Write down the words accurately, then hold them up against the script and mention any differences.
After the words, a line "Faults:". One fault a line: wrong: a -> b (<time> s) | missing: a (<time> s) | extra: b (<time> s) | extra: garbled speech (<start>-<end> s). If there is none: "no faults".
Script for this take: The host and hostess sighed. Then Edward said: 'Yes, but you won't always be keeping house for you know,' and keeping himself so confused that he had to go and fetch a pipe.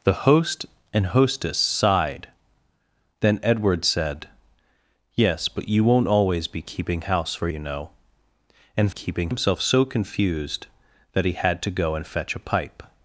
The host and hostess sighed. Then Edward said: 'Yes, but you won't always be keeping house for you know,' and keeping himself so confused that he had to go and fetch a pipe.
Faults:
no faults